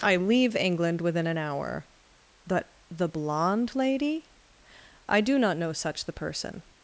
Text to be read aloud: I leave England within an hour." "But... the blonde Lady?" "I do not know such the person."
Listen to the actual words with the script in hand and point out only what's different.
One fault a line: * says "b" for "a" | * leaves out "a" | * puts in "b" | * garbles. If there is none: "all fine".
all fine